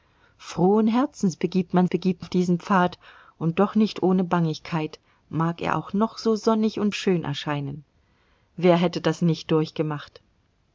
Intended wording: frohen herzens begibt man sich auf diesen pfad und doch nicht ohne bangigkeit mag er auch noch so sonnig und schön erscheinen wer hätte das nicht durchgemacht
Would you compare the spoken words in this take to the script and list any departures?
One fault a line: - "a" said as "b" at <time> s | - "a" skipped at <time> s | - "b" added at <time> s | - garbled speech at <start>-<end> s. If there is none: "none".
- "sich" said as "begibt" at 1.9 s